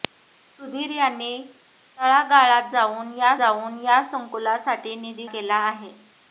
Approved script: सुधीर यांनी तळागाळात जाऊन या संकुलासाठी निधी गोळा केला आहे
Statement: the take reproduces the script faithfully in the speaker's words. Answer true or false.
false